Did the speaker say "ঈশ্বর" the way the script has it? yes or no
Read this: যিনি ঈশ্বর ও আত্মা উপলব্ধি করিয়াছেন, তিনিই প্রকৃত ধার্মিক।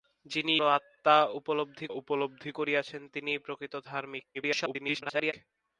no